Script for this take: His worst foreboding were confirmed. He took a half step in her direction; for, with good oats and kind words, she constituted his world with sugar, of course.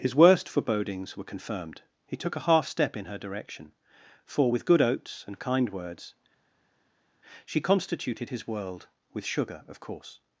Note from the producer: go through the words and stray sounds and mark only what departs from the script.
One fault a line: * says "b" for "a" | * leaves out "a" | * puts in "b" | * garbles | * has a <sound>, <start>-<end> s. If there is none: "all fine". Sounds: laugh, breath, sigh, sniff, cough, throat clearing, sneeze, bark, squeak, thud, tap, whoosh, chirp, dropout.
* says "forebodings" for "foreboding"